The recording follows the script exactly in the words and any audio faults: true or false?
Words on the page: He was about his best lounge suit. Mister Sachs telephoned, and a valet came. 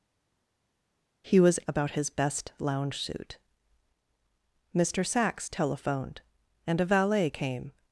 true